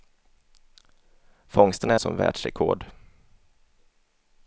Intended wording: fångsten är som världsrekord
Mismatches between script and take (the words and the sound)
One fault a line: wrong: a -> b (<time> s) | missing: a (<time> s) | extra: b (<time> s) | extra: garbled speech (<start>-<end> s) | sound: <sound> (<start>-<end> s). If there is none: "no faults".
no faults